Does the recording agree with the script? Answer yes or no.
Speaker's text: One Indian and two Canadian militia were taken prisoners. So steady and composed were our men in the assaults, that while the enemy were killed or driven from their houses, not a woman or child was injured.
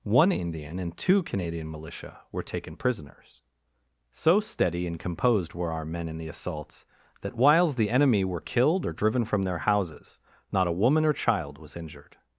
no